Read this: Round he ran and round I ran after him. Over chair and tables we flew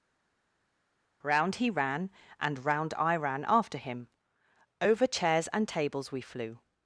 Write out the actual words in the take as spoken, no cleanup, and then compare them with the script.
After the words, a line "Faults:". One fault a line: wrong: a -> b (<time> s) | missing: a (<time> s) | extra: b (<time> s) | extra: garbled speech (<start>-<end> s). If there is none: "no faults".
Round he ran and round I ran after him. Over chairs and tables we flew
Faults:
wrong: chair -> chairs (5.1 s)